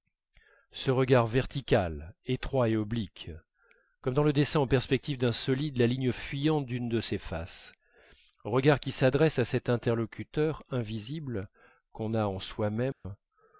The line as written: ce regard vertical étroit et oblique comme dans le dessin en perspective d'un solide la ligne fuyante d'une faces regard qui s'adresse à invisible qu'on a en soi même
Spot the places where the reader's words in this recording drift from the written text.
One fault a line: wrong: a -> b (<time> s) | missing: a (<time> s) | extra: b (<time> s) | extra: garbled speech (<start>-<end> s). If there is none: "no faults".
extra: de ses (6.9 s)
extra: cet interlocuteur (9.4 s)